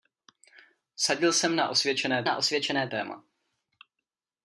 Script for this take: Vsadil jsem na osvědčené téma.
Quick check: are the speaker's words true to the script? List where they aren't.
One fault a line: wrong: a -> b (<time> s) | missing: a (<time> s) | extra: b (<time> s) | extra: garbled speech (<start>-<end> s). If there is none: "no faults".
extra: na osvědčené (2.2 s)